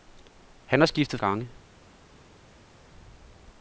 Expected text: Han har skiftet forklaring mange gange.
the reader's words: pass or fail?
fail